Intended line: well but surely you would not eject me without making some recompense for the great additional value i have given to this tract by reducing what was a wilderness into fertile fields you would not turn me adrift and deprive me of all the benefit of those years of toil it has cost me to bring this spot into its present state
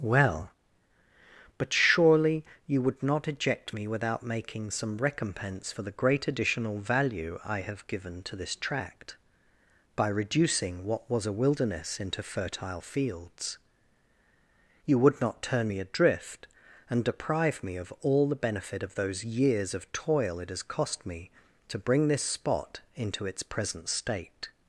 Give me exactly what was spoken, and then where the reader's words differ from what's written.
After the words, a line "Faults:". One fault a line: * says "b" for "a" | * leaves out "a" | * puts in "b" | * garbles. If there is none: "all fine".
well but surely you would not eject me without making some recompense for the great additional value i have given to this tract by reducing what was a wilderness into fertile fields you would not turn me adrift and deprive me of all the benefit of those years of toil it has cost me to bring this spot into its present state
Faults:
all fine